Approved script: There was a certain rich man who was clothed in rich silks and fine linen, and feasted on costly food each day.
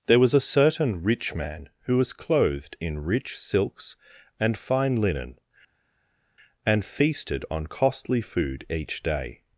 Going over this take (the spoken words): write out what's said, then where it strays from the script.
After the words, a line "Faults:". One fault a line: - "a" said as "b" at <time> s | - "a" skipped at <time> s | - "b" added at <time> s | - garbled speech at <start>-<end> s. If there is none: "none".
There was a certain rich man who was clothed in rich silks and fine linen, and feasted on costly food each day.
Faults:
none